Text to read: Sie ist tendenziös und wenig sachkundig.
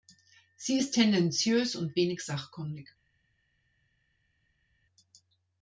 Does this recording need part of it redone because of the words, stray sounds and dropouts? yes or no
no